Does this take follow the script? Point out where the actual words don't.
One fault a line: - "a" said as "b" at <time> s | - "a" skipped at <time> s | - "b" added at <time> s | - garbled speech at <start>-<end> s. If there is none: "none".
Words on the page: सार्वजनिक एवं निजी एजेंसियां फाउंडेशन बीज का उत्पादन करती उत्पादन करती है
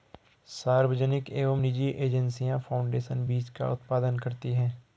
- "उत्पादन करती" skipped at 4.5 s